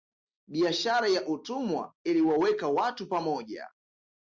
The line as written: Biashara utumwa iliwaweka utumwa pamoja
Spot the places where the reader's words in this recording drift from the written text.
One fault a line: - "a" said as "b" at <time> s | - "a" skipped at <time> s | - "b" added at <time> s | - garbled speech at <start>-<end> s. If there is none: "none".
- "ya" added at 1.1 s
- "utumwa" said as "watu" at 2.7 s